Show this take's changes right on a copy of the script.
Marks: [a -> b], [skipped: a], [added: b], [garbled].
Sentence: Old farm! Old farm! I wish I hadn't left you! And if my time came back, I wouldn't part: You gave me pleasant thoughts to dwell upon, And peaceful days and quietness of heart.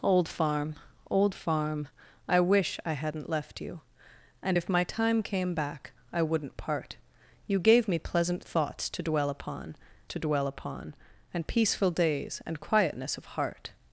Old farm! Old farm! I wish I hadn't left you! And if my time came back, I wouldn't part: You gave me pleasant thoughts to dwell upon, [added: to dwell upon] And peaceful days and quietness of heart.